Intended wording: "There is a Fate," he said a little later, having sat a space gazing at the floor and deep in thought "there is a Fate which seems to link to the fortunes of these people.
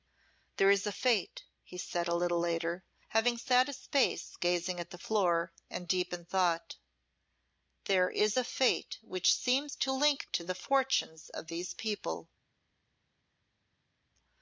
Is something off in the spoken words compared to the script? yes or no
no